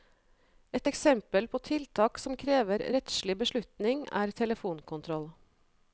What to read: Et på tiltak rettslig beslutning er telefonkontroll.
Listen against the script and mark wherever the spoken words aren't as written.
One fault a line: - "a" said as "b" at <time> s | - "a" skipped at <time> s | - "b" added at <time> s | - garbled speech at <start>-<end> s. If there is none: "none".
- "eksempel" added at 0.9 s
- "som krever" added at 2.2 s